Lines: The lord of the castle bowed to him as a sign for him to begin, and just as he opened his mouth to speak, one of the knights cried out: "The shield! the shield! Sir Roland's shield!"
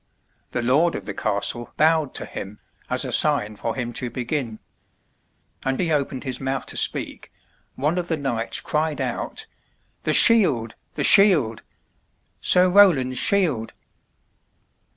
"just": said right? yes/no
no